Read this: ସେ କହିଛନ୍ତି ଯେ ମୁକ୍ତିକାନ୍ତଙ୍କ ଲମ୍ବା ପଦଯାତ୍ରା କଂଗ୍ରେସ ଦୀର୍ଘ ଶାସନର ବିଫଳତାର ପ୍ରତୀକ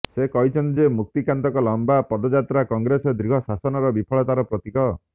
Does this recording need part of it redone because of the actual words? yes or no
no